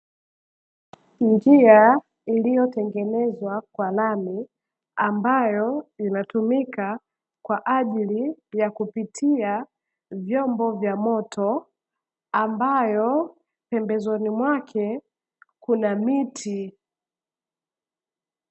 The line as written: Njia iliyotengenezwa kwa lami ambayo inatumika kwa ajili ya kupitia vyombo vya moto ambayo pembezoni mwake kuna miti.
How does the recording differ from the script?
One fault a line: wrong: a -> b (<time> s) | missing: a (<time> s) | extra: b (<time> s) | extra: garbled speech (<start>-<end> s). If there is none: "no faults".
no faults